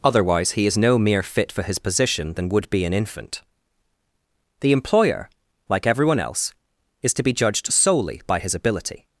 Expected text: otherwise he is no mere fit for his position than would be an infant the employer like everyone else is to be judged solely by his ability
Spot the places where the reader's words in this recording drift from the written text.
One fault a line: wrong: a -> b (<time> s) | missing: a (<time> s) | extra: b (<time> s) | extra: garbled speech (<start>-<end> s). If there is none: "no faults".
no faults